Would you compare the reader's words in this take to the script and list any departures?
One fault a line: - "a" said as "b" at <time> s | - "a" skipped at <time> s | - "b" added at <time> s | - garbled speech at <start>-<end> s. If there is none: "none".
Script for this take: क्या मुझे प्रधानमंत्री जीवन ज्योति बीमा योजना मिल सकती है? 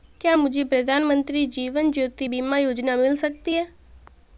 none